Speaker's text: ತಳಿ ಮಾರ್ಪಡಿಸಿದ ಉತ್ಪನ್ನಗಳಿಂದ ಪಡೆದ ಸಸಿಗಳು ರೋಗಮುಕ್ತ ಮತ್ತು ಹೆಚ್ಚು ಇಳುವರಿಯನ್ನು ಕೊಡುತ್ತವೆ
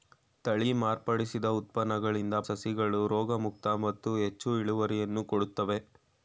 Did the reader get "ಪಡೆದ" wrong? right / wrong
wrong